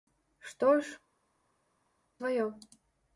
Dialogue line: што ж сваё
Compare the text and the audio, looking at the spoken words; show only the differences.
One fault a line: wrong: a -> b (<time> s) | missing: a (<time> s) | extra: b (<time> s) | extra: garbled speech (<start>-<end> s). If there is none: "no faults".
no faults